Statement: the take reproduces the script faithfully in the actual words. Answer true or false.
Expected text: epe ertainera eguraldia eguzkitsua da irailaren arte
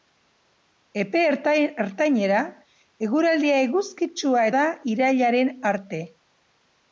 true